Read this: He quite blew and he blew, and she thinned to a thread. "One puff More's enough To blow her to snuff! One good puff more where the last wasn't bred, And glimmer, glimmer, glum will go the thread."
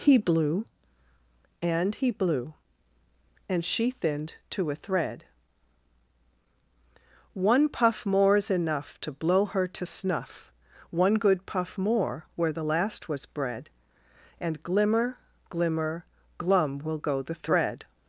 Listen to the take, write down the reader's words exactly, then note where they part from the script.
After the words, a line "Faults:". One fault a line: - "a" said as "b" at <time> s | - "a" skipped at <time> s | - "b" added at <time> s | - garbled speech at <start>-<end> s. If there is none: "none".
He blew and he blew, and she thinned to a thread. "One puff More's enough To blow her to snuff! One good puff more where the last was bred, And glimmer, glimmer, glum will go the thread."
Faults:
- "quite" skipped at 0.2 s
- "wasn't" said as "was" at 13.1 s